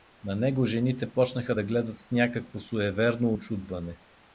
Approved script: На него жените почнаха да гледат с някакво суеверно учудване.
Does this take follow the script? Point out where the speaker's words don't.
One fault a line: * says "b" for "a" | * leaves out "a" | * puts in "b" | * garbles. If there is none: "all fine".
all fine